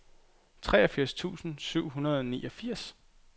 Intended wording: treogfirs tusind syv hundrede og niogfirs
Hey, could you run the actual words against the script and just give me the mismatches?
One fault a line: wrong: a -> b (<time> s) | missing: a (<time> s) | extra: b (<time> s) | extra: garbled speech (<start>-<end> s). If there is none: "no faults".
no faults